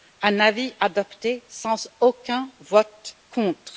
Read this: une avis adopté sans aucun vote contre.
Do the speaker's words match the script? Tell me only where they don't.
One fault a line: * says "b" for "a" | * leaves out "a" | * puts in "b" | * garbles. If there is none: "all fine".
* says "un" for "une"